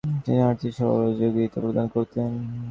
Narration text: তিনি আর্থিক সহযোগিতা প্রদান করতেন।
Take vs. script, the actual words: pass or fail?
pass